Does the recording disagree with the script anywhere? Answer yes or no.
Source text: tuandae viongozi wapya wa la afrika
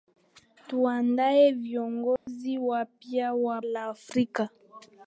no